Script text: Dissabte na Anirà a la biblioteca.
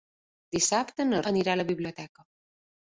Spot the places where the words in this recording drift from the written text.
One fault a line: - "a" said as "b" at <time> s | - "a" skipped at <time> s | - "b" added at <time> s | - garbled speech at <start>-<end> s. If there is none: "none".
none